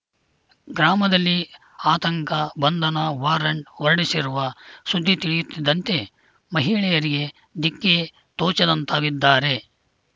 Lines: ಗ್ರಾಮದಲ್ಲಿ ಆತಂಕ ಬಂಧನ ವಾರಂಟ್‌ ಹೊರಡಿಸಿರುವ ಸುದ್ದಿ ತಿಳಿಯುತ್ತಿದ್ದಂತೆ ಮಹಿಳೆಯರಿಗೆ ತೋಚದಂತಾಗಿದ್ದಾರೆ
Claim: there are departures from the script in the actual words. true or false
true